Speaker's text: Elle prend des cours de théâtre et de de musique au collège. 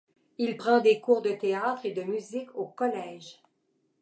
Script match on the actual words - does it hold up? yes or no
no